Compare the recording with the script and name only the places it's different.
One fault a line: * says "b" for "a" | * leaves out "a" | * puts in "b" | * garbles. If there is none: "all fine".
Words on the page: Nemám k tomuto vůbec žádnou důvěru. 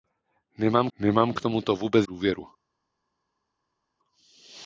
* puts in "nemám"
* leaves out "žádnou"